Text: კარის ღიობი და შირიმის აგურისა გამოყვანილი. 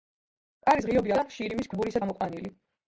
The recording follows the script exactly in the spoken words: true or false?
true